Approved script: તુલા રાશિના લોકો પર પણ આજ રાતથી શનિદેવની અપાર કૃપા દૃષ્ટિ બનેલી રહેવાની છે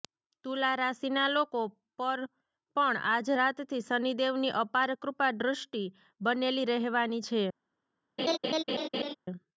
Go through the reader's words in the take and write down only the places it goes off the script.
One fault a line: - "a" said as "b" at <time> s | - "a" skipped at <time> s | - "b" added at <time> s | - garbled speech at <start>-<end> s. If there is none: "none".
none